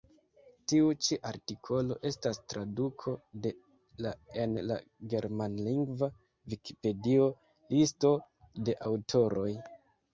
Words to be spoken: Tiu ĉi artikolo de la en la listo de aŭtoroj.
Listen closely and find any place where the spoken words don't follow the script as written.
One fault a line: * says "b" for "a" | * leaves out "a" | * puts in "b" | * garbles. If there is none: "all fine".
* puts in "estas traduko"
* puts in "germanlingva vikipedio"